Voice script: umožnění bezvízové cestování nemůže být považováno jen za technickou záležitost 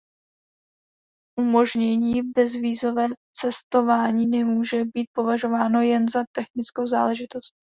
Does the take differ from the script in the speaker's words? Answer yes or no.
no